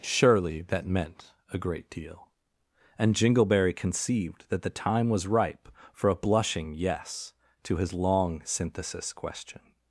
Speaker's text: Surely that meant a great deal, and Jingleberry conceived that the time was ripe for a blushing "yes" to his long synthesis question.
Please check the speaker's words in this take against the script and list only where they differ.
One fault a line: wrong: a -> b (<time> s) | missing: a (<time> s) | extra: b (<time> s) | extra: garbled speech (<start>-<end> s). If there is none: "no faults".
no faults